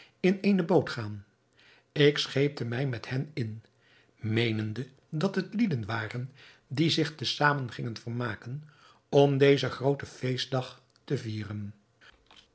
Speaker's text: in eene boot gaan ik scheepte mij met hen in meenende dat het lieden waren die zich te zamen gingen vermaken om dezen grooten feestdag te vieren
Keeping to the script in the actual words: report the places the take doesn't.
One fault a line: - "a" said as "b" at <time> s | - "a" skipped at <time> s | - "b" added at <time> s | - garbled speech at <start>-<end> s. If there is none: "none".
none